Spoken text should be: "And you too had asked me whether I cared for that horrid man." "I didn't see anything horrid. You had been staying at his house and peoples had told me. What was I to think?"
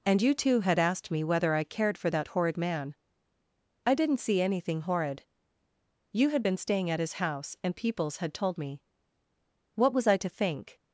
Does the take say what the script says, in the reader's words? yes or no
yes